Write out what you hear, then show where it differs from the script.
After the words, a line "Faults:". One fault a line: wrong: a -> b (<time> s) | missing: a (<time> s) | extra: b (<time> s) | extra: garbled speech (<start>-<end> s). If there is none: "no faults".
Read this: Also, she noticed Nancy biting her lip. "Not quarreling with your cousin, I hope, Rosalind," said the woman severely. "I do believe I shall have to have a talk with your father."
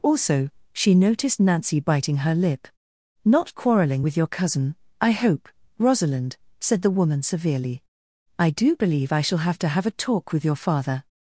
Also, she noticed Nancy biting her lip. "Not quarreling with your cousin, I hope, Rosalind," said the woman severely. "I do believe I shall have to have a talk with your father."
Faults:
no faults